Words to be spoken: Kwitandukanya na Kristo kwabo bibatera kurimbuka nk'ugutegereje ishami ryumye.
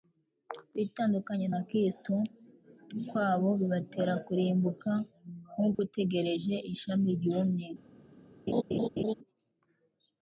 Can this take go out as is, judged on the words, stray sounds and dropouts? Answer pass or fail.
fail